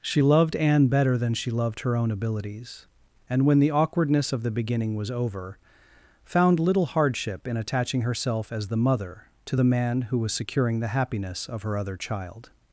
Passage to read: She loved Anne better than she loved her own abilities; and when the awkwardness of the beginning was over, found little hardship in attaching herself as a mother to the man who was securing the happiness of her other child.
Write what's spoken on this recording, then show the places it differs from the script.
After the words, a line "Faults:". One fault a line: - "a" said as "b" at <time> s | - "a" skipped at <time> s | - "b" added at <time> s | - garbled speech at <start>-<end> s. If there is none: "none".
She loved Anne better than she loved her own abilities; and when the awkwardness of the beginning was over, found little hardship in attaching herself as the mother to the man who was securing the happiness of her other child.
Faults:
- "a" said as "the" at 8.7 s